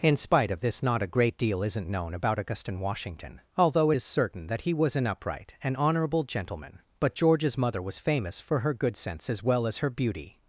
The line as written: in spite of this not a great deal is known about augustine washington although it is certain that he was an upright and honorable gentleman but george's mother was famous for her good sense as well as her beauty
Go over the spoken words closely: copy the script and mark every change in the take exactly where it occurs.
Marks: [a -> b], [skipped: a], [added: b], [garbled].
in spite of this not a great deal [is -> isn't] known about augustine washington although it is certain that he was an upright and honorable gentleman but george's mother was famous for her good sense as well as her beauty